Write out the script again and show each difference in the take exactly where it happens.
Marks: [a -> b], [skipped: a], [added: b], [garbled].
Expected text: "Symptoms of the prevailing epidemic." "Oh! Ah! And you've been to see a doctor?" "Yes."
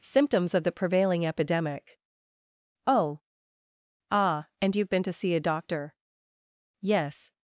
"Symptoms of the prevailing epidemic." "Oh! Ah! And you've been to see a doctor?" "Yes."